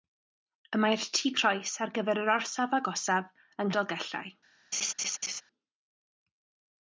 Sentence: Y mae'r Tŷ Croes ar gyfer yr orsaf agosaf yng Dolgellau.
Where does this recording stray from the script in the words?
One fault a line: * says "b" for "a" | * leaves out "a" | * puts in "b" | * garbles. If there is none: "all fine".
all fine